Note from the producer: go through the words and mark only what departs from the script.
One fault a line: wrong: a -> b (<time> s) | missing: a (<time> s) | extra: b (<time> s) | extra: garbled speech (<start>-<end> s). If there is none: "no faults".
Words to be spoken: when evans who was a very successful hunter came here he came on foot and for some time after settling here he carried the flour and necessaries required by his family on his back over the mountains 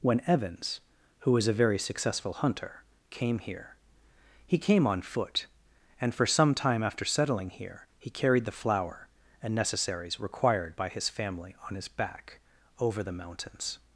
no faults